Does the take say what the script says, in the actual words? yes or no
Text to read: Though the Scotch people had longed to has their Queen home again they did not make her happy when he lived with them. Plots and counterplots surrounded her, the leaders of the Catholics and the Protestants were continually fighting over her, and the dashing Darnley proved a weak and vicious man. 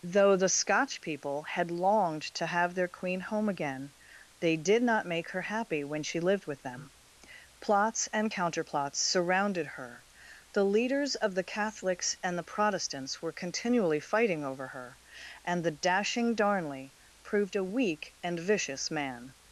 no